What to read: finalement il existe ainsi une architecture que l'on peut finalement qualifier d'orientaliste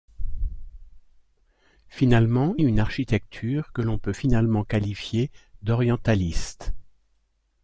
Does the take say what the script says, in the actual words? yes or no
no